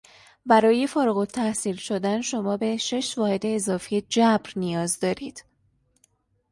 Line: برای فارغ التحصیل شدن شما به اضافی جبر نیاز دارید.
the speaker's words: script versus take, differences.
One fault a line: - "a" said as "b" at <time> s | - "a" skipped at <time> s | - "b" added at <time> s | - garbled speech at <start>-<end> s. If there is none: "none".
- "شش واحد" added at 2.8 s